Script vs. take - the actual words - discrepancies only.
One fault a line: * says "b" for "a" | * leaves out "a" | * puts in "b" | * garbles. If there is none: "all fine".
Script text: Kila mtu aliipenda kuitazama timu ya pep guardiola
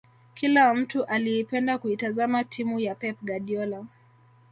all fine